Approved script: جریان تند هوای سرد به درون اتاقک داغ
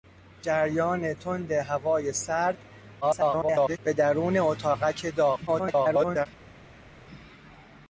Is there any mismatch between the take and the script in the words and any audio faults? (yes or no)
yes